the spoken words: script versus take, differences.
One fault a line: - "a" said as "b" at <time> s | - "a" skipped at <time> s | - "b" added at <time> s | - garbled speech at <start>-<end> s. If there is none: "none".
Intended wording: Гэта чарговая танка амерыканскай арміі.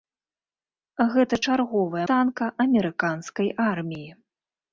none